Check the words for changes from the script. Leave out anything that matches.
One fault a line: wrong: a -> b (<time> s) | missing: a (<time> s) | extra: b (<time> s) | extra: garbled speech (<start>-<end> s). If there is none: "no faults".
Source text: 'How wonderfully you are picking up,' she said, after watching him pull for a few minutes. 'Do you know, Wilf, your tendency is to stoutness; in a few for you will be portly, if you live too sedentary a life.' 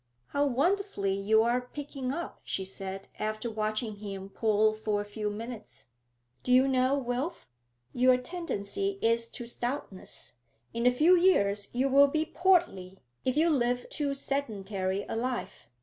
wrong: for -> years (11.2 s)